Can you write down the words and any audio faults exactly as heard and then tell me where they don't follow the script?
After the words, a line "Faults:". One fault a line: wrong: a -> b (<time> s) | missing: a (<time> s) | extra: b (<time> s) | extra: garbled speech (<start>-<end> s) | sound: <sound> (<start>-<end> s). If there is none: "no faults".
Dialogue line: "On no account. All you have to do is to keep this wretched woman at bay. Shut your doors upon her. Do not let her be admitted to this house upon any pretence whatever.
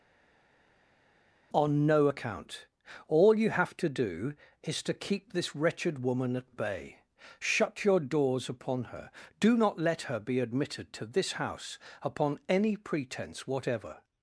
"On no account. All you have to do is to keep this wretched woman at bay. Shut your doors upon her. Do not let her be admitted to this house upon any pretence whatever.
Faults:
no faults